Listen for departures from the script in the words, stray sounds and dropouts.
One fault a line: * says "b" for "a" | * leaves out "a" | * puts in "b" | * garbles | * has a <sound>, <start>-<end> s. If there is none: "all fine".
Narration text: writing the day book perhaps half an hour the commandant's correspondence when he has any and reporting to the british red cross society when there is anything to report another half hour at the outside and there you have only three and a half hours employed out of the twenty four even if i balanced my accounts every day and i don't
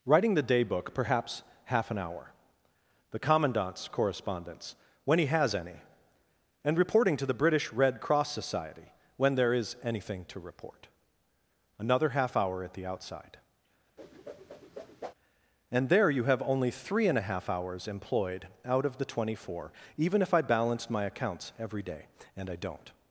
* has a whoosh, 14.0-15.1 s